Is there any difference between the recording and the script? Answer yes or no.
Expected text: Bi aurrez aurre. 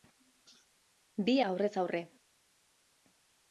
no